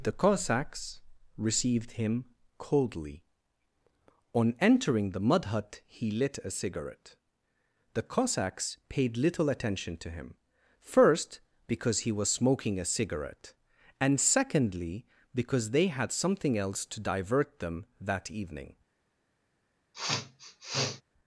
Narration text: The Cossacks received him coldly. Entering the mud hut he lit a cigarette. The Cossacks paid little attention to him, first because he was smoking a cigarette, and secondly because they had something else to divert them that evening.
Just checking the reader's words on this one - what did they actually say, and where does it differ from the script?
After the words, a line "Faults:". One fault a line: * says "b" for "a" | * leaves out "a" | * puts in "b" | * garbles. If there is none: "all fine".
The Cossacks received him coldly. On entering the mud hut he lit a cigarette. The Cossacks paid little attention to him, first because he was smoking a cigarette, and secondly because they had something else to divert them that evening.
Faults:
* puts in "On"